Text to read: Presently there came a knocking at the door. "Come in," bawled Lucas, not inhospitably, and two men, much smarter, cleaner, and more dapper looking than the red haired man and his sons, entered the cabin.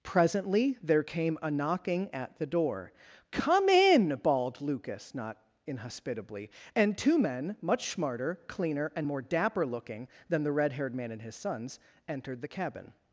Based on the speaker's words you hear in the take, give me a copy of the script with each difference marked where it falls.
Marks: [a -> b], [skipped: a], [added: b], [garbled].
Presently there came a knocking at the door. "Come in," bawled Lucas, not inhospitably, and two men, much smarter, cleaner, and more dapper looking than the red haired man and his sons, entered the cabin.